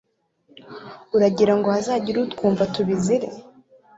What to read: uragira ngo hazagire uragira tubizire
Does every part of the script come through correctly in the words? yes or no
no